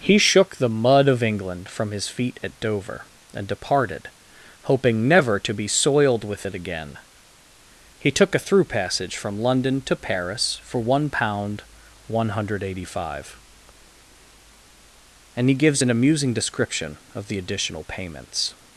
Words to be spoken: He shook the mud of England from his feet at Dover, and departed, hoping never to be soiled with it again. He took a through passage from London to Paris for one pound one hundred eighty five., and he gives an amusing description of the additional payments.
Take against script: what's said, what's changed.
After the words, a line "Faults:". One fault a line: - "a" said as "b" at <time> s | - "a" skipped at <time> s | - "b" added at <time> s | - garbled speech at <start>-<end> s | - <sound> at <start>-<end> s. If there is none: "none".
He shook the mud of England from his feet at Dover, and departed, hoping never to be soiled with it again. He took a through passage from London to Paris for one pound one hundred eighty five., and he gives an amusing description of the additional payments.
Faults:
none